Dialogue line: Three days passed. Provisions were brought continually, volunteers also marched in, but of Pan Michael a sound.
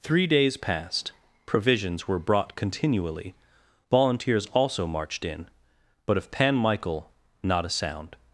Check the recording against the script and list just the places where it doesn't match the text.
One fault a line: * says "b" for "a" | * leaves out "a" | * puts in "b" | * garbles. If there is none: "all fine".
* puts in "not"